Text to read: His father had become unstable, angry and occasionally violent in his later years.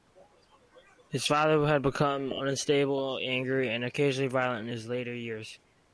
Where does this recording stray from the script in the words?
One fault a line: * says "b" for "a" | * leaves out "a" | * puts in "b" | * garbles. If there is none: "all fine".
all fine